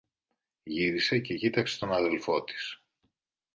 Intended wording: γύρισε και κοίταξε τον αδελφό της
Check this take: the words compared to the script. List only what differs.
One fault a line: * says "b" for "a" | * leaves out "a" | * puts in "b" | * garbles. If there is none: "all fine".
all fine